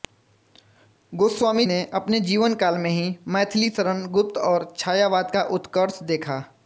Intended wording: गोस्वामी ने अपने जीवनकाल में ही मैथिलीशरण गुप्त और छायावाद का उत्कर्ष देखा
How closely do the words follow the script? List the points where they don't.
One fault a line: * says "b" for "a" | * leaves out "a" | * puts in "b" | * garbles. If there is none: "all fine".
all fine